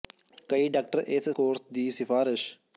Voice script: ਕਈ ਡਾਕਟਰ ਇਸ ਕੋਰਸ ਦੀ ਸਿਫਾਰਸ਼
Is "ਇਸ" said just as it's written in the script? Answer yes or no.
yes